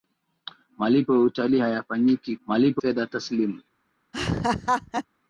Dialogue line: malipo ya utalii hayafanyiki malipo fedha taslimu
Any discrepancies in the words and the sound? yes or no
yes